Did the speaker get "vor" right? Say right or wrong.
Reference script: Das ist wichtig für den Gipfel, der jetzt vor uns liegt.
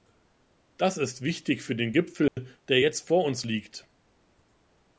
right